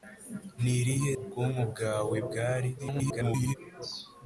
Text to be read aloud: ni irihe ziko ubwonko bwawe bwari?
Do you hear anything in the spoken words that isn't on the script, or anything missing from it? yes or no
yes